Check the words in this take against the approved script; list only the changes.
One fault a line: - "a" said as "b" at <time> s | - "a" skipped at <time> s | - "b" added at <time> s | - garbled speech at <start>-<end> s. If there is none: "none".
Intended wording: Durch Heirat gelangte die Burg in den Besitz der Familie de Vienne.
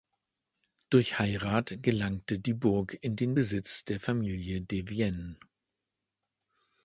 none